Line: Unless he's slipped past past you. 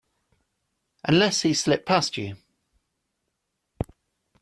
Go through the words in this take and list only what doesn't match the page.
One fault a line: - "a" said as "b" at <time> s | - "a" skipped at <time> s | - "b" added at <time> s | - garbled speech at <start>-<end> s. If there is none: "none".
- "past" skipped at 2.2 s